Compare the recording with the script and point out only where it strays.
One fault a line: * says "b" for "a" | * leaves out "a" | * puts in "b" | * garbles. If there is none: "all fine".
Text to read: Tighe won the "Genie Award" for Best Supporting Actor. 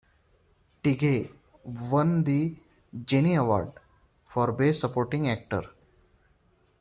all fine